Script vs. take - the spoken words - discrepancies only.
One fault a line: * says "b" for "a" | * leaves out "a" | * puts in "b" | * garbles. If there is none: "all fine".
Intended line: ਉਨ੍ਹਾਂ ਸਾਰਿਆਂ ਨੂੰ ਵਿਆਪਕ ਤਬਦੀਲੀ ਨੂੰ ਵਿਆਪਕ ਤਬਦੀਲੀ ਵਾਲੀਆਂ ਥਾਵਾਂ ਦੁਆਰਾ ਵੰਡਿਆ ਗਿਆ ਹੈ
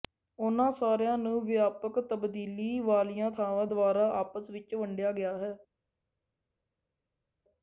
* leaves out "ਨੂੰ ਵਿਆਪਕ ਤਬਦੀਲੀ"
* puts in "ਆਪਸ ਵਿੱਚ"